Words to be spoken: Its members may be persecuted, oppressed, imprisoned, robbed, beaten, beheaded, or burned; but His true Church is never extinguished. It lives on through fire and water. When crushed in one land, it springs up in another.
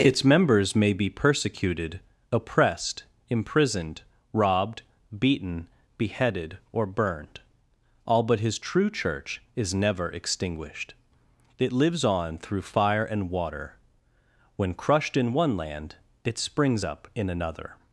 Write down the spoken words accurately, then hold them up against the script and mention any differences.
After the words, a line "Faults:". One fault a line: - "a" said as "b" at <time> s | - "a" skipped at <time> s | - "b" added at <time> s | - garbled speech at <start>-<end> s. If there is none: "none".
Its members may be persecuted, oppressed, imprisoned, robbed, beaten, beheaded, or burned; all but His true Church is never extinguished. It lives on through fire and water. When crushed in one land, it springs up in another.
Faults:
- "all" added at 8.1 s